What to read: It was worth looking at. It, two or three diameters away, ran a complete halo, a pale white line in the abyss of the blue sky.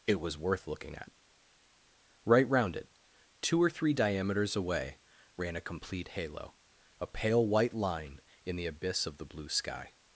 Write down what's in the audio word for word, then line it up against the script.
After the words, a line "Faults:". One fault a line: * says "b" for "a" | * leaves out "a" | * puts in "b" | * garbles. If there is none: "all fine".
It was worth looking at. Right round it, two or three diameters away, ran a complete halo, a pale white line in the abyss of the blue sky.
Faults:
* puts in "Right round"